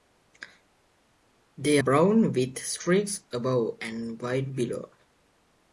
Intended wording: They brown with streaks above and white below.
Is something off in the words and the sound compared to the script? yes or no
no